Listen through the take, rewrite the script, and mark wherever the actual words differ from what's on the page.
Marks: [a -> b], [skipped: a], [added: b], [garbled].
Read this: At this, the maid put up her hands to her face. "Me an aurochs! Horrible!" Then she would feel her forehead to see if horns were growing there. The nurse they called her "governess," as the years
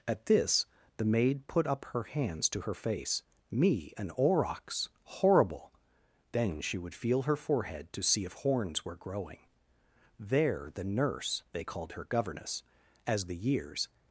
At this, the maid put up her hands to her face. "Me an aurochs! Horrible!" Then she would feel her forehead to see if horns were growing there. The nurse they called her "governess," as the years